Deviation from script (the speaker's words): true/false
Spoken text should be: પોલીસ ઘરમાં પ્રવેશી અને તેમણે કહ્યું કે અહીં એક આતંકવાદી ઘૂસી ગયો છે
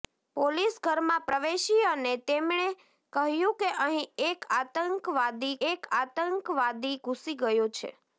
true